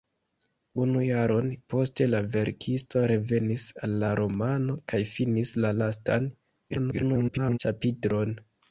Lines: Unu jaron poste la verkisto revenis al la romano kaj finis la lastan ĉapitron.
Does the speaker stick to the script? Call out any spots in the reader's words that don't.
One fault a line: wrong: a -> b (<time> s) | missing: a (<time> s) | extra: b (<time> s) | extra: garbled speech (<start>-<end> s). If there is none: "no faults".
extra: garbled speech (6.7-7.6 s)